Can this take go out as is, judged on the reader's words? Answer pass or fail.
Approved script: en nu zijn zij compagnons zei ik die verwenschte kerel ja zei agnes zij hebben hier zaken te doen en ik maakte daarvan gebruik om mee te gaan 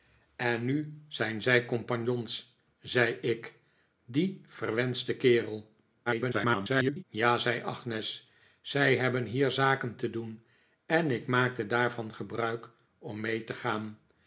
fail